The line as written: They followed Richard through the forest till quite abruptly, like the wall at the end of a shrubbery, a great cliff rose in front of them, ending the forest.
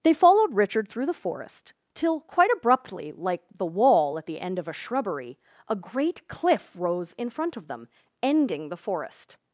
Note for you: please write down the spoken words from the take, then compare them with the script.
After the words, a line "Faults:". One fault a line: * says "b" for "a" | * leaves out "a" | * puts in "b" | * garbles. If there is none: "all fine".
They followed Richard through the forest till quite abruptly, like the wall at the end of a shrubbery, a great cliff rose in front of them, ending the forest.
Faults:
all fine